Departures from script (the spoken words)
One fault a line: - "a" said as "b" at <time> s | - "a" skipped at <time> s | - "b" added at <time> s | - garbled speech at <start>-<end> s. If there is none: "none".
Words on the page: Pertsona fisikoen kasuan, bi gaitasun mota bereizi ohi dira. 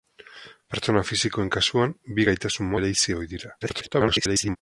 - "mota" skipped at 2.7 s
- garbled speech at 3.6-4.6 s